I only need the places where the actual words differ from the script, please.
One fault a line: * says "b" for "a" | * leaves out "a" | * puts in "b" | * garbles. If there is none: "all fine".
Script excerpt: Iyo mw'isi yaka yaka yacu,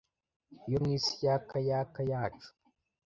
all fine